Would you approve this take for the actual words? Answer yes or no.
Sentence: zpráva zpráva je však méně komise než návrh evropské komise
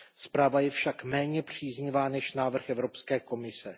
no